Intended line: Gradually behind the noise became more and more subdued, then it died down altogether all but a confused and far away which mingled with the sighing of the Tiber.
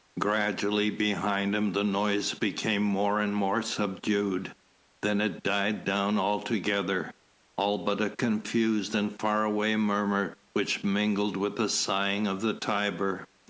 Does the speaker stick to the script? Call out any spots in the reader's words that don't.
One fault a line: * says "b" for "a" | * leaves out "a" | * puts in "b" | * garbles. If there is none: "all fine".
* puts in "him"
* puts in "murmur"